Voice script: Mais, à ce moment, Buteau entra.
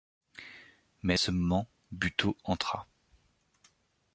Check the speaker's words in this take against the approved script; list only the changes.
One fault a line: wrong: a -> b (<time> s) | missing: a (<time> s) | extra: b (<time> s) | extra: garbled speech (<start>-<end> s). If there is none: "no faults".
no faults